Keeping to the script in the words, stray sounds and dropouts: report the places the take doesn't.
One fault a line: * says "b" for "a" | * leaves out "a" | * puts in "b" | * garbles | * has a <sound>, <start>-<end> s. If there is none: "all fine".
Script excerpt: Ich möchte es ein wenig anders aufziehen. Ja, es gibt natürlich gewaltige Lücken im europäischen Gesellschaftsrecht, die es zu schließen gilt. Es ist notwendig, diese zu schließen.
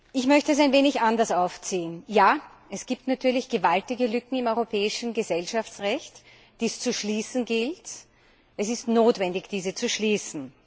all fine